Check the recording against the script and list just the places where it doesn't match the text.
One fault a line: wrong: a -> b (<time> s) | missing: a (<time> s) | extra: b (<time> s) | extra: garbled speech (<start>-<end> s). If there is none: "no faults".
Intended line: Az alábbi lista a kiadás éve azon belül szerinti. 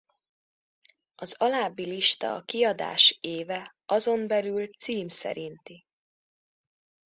extra: cím (4.7 s)